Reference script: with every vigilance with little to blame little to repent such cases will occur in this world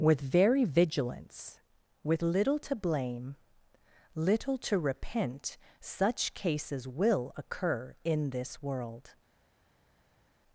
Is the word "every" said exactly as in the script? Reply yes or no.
no